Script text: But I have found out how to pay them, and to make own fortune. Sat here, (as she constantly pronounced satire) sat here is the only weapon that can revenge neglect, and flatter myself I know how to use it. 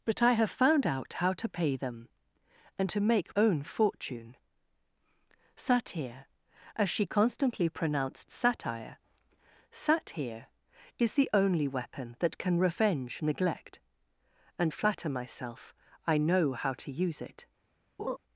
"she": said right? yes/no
yes